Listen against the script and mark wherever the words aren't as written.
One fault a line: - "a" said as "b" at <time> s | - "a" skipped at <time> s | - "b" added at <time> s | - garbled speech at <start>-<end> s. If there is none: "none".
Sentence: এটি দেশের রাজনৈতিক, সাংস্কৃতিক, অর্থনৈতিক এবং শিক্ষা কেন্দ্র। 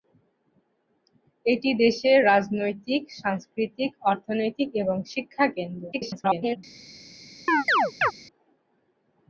- garbled speech at 5.9-6.6 s